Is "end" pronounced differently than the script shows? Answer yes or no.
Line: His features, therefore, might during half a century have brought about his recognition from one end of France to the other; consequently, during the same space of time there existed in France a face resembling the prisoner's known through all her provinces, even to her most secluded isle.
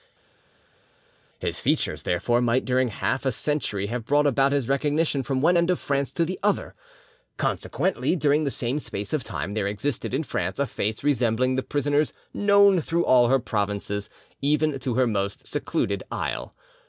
no